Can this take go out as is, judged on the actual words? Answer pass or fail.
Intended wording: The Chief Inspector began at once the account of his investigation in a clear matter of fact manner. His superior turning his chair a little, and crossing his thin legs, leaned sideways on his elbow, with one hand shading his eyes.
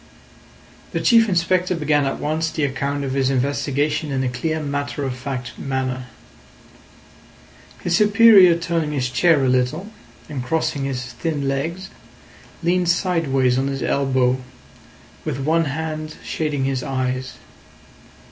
pass